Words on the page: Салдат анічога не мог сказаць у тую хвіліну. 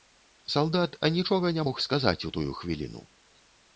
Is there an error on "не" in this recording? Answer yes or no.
no